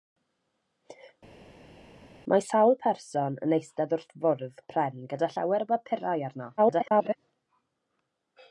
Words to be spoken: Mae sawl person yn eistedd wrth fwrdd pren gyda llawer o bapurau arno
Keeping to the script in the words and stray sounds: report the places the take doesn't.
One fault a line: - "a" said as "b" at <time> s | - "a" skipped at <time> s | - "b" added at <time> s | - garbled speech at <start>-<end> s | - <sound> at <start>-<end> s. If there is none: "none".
- garbled speech at 6.6-7.2 s